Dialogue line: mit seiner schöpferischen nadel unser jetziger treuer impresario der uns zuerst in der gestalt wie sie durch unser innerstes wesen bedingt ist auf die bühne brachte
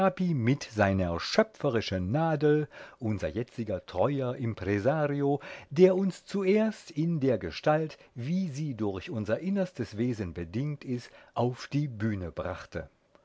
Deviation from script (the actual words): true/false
false